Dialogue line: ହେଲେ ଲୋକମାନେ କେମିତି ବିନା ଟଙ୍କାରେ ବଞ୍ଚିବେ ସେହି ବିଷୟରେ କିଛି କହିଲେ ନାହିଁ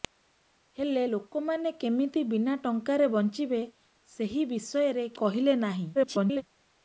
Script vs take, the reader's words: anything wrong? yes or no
yes